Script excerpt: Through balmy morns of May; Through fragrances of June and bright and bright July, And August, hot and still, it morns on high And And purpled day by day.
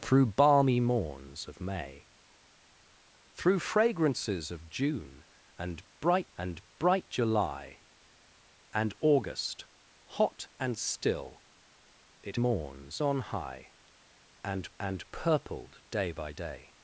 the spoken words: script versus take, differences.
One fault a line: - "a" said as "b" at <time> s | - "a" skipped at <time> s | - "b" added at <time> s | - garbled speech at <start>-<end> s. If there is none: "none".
none